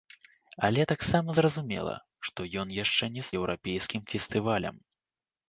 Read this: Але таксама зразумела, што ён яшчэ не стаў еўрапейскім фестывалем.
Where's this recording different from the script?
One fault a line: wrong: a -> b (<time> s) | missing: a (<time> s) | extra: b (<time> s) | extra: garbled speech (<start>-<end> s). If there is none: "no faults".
missing: стаў (3.3 s)